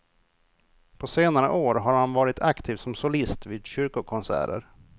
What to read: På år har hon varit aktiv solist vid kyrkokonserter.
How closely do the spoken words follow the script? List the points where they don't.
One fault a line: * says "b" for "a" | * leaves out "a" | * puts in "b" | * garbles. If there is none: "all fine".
* puts in "senare"
* says "han" for "hon"
* puts in "som"